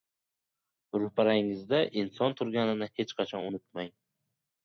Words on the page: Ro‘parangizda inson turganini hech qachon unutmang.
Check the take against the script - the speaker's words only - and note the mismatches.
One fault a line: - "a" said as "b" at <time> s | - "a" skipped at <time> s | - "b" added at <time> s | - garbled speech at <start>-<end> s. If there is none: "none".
none